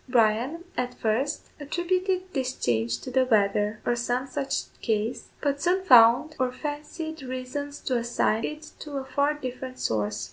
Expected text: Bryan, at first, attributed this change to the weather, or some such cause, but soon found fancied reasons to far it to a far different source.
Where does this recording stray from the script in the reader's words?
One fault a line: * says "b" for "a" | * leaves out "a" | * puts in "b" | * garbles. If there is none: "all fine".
* puts in "or"
* says "assign" for "far"